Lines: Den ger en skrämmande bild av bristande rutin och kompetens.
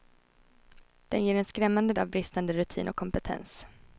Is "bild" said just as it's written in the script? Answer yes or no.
no